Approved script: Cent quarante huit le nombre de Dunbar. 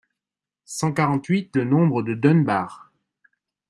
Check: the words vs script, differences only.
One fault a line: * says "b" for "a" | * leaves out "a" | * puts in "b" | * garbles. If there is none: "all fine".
all fine